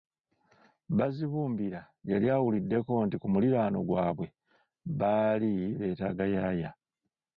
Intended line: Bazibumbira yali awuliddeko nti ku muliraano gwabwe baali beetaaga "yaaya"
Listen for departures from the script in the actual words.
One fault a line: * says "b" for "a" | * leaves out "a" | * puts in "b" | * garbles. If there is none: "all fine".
all fine